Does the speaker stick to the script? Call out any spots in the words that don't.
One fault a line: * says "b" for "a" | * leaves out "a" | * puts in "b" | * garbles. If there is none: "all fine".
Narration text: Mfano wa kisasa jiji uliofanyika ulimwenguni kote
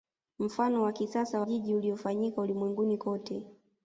all fine